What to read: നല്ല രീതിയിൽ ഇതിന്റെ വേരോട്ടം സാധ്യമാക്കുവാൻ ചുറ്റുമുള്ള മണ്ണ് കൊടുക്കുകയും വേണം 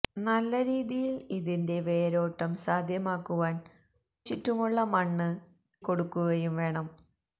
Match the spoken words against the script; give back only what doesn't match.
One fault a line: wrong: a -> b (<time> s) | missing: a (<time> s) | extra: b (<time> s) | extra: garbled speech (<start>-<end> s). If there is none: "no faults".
no faults